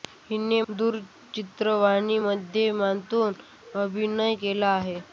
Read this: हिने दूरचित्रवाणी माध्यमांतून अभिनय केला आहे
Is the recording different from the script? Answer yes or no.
no